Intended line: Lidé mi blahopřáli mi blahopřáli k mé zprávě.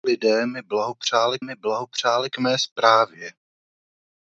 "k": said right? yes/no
yes